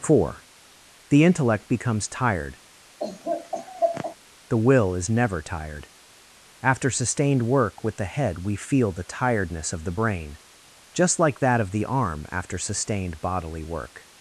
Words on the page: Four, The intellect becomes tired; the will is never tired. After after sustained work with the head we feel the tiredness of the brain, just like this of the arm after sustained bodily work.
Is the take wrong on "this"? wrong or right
wrong